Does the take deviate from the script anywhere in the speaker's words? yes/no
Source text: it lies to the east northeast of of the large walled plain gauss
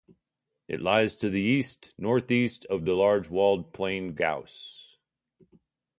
yes